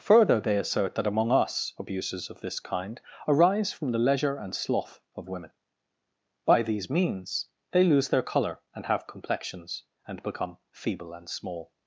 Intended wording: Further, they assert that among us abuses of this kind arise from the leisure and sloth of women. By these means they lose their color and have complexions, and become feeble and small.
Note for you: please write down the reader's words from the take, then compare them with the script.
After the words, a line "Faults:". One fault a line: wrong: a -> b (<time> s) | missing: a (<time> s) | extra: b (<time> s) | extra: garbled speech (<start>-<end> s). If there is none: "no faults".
Further, they assert that among us abuses of this kind arise from the leisure and sloth of women. By these means they lose their color and have complexions, and become feeble and small.
Faults:
no faults